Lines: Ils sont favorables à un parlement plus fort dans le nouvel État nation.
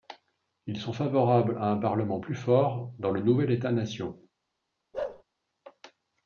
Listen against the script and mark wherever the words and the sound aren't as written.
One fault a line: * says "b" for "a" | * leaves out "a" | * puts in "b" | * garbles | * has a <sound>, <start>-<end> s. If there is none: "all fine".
* has a bark, 4.9-5.2 s